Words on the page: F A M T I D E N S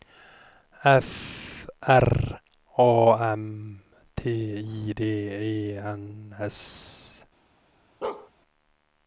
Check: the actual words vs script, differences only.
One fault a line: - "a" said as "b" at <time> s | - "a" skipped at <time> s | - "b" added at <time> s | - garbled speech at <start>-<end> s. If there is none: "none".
- "R" added at 1.8 s